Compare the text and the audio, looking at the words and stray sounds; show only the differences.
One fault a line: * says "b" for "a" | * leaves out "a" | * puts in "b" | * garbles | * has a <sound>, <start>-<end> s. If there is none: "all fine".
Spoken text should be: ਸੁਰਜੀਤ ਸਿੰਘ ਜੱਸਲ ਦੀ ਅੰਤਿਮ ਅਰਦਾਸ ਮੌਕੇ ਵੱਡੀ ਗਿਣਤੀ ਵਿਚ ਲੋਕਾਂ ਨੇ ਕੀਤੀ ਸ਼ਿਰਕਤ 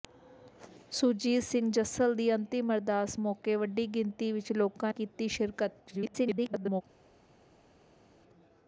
* leaves out "ਨੇ"
* garbles